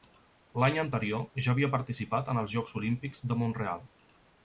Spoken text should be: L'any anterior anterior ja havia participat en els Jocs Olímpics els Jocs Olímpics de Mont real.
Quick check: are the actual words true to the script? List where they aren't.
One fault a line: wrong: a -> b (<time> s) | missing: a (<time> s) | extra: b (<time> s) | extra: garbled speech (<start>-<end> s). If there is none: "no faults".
missing: anterior (1.3 s)
missing: els Jocs Olímpics (3.3 s)